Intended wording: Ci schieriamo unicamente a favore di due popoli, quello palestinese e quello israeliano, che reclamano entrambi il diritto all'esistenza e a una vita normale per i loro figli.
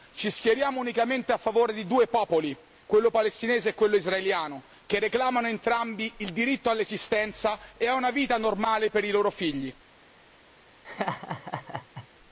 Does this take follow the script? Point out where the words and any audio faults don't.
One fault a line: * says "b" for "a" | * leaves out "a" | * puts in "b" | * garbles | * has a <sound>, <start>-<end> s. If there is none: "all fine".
* has a laugh, 10.8-12.1 s